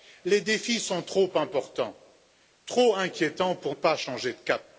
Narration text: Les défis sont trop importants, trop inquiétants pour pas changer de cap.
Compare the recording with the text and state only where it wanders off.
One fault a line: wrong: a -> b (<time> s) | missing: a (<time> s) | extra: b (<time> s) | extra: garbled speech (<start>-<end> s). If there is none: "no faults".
no faults